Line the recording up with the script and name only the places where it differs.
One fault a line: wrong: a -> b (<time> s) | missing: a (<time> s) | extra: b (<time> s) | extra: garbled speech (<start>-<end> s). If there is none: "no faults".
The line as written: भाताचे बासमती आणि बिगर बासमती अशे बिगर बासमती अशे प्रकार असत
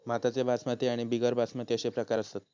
missing: बिगर बासमती अशे (1.9 s)